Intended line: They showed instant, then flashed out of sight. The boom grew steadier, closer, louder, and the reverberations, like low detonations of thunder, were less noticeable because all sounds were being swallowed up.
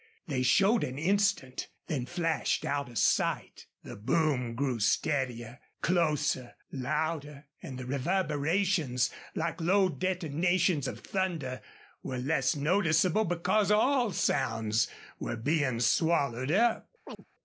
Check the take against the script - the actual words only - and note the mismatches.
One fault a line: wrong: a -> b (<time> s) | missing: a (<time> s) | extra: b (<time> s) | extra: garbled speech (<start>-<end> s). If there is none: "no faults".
extra: an (0.8 s)